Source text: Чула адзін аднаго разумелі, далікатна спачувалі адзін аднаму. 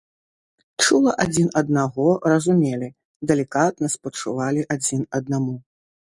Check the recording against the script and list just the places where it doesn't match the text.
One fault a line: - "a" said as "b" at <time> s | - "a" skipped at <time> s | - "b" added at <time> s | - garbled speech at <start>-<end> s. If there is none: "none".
none